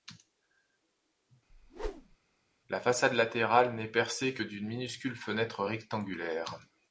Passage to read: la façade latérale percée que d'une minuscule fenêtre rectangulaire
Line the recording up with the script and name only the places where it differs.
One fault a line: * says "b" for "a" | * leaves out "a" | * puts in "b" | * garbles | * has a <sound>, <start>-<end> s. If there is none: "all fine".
* has a whoosh, 1.5-2.2 s
* puts in "n'est"